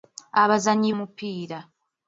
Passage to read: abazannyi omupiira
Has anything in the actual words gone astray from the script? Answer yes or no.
no